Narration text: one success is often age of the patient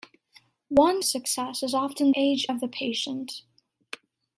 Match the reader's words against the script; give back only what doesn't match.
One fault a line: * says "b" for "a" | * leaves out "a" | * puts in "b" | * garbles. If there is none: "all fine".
all fine